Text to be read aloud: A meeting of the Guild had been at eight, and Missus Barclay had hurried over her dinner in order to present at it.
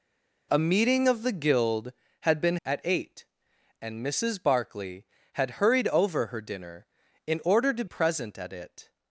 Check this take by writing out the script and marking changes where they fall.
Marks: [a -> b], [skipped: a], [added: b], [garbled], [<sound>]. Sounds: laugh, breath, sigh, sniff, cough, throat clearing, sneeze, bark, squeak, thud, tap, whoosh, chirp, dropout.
A meeting of the Guild had been at eight, and Missus Barclay had hurried over her dinner in order to present at it.